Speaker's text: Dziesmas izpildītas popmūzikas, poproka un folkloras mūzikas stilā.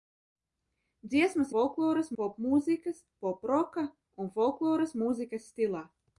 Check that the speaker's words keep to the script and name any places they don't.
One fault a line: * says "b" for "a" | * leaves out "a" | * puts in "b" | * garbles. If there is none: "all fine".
* says "folkloras" for "izpildītas"